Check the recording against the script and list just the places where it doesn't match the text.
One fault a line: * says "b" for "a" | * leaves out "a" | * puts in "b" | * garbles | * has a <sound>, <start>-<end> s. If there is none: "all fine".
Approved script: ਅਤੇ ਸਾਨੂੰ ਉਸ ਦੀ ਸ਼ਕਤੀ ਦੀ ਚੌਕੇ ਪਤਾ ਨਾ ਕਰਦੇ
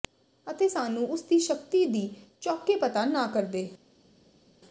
all fine